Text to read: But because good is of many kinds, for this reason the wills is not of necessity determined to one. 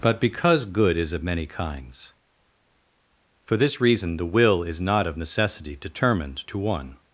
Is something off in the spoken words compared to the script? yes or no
yes